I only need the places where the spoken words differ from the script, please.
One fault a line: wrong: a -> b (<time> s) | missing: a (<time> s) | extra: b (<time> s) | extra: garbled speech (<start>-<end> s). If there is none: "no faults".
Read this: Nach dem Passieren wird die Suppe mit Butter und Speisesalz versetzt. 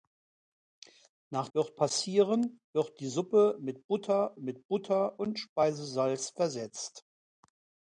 wrong: dem -> wird (1.5 s)
extra: mit Butter (4.4 s)